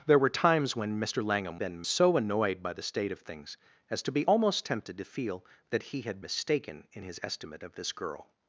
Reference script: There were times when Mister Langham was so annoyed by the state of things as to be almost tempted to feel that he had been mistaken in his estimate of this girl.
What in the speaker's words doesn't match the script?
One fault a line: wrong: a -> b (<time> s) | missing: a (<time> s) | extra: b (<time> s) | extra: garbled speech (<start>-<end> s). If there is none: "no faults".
wrong: was -> been (1.6 s)
missing: been (6.2 s)